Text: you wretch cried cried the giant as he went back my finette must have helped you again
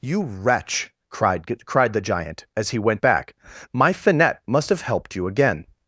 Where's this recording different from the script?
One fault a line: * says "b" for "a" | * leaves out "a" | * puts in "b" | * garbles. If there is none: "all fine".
all fine